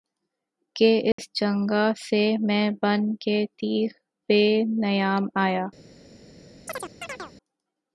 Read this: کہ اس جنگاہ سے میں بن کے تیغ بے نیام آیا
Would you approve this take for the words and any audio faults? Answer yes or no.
no